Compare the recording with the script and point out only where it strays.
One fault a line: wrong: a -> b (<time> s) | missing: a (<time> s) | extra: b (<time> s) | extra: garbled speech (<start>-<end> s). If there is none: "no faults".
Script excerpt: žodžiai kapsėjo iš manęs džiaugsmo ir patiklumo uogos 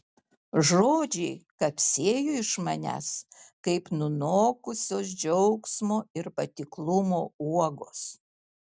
extra: kaip nunokusios (3.7 s)